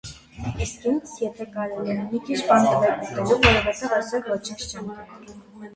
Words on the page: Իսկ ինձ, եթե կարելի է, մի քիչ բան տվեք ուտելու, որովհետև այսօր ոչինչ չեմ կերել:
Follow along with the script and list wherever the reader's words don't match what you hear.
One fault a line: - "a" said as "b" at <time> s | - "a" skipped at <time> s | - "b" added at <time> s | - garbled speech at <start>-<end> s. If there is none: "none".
none